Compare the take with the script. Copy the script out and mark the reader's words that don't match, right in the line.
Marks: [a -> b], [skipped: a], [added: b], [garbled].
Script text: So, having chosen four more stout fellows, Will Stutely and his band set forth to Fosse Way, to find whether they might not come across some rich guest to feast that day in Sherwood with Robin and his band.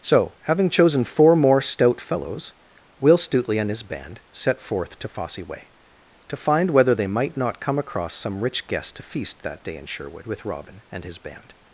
So, having chosen four more stout fellows, Will Stutely and his band set forth to Fosse Way, to find whether they might not come across some rich guest to feast that day in Sherwood with Robin and his band.